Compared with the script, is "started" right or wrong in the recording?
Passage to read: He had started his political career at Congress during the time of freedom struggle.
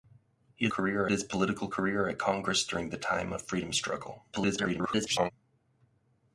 wrong